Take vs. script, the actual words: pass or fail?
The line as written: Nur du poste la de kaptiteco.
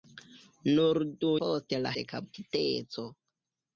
pass